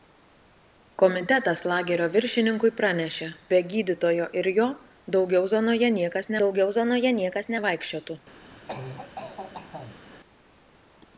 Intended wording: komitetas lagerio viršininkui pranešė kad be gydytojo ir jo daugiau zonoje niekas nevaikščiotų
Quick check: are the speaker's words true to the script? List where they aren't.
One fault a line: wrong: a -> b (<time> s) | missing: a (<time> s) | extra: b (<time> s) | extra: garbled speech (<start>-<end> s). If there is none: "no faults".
missing: kad (3.3 s)
extra: daugiau zonoje niekas (6.4 s)